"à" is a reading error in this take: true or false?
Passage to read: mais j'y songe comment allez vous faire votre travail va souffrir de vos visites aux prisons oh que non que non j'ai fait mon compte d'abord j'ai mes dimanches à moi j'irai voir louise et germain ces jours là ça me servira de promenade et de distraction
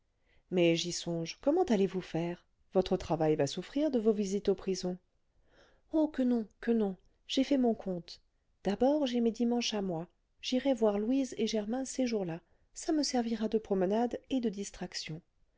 false